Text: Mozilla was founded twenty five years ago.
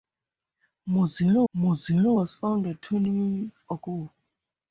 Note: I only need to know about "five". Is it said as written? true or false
false